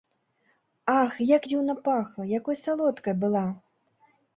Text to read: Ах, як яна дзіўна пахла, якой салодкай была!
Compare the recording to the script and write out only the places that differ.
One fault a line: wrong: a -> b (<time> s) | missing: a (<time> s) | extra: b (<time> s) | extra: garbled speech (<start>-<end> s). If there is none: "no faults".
missing: яна (1.4 s)